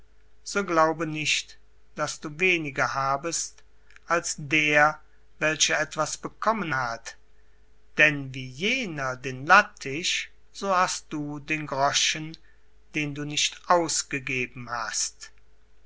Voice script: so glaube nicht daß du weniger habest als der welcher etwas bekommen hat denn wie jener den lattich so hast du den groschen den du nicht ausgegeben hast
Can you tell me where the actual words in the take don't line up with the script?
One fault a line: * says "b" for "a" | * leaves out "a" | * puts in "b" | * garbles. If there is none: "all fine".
all fine